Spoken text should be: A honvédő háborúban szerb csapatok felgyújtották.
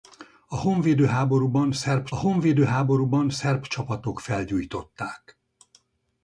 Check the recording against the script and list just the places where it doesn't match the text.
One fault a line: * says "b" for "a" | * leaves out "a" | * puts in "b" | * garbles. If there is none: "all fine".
* puts in "honvédő háborúban szerb"